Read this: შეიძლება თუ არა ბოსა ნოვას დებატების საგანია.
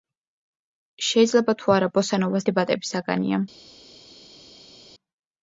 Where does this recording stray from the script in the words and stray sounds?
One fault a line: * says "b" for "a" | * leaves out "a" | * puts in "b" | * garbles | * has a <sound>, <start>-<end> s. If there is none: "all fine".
all fine